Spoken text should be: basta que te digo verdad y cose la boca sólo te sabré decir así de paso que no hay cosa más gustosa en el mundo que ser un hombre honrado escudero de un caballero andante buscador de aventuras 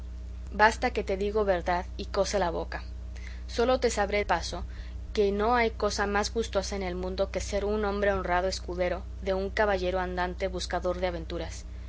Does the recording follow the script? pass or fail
fail